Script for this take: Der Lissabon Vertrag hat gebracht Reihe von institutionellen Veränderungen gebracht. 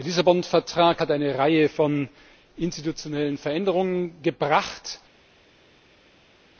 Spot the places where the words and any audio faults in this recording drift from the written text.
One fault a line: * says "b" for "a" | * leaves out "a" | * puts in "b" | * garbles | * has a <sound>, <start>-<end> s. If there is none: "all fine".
* says "eine" for "gebracht"